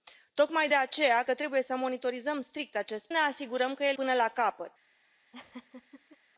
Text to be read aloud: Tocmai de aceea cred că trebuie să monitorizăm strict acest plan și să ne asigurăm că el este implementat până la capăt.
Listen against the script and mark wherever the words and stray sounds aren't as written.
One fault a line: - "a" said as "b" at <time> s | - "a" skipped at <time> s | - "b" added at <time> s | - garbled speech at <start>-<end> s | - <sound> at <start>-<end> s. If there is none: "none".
- "cred" skipped at 1.2 s
- "plan și să" skipped at 3.1 s
- "este implementat" skipped at 4.0 s
- laugh at 5.3-6.2 s